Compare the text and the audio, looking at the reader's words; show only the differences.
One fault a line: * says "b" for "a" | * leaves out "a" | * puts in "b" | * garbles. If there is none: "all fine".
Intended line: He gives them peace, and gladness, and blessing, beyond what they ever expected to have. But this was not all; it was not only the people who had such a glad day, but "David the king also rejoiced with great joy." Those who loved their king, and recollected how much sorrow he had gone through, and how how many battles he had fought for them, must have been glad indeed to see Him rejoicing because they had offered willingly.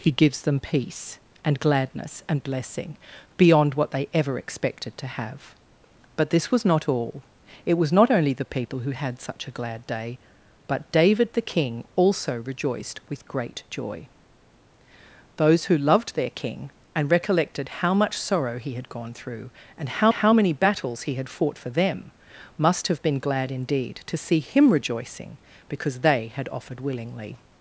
all fine